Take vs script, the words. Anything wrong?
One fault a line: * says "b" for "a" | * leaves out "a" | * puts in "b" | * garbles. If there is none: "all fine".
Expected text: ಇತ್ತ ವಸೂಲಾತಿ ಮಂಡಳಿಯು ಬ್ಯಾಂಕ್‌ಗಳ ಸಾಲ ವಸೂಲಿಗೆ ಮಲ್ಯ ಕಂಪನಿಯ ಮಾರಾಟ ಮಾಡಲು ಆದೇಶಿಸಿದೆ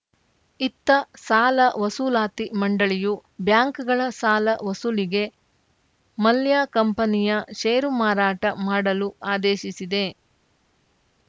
* puts in "ಸಾಲ"
* puts in "ಷೇರು"